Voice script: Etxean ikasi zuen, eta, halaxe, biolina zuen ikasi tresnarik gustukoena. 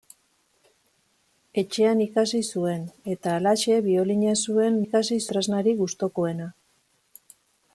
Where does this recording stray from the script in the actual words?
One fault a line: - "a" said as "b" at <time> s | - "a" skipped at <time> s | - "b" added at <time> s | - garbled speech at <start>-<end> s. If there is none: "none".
none